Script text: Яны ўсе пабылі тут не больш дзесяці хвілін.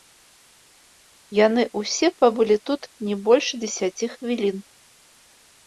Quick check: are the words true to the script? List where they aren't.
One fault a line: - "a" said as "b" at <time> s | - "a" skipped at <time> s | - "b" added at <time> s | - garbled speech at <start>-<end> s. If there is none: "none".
none